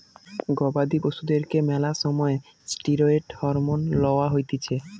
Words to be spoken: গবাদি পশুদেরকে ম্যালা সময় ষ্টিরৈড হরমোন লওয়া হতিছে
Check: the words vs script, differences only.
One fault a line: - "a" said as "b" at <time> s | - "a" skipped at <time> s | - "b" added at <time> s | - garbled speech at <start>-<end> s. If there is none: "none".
none